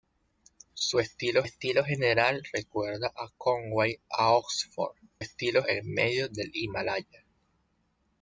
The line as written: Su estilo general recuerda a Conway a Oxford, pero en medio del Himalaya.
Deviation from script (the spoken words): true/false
true